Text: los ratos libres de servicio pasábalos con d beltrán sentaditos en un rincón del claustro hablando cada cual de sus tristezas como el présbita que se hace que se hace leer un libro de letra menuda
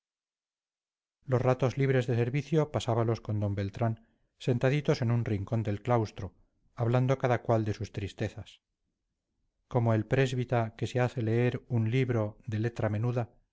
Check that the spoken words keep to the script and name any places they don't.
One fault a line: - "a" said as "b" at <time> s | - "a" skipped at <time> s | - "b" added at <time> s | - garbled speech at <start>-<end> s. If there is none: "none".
- "que se hace" skipped at 11.2 s